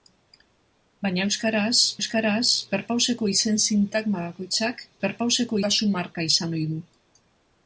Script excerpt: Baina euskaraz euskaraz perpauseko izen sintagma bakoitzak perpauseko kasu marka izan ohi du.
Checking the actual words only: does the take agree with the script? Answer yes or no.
yes